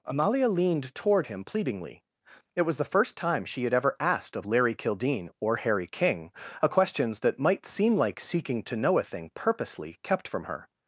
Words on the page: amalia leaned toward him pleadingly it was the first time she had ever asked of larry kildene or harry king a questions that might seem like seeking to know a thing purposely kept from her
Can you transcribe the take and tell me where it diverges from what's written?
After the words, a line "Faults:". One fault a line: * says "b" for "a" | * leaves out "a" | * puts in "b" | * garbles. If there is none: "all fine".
amalia leaned toward him pleadingly it was the first time she had ever asked of larry kildene or harry king a questions that might seem like seeking to know a thing purposely kept from her
Faults:
all fine